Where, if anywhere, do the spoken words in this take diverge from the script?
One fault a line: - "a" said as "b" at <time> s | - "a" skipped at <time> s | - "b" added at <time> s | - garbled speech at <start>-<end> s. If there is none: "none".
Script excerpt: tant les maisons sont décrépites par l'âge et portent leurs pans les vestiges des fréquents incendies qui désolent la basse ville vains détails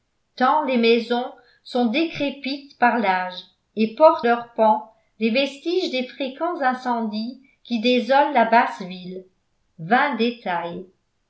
none